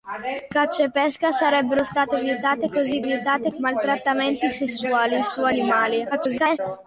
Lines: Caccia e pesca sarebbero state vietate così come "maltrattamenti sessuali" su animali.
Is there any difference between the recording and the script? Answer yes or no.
yes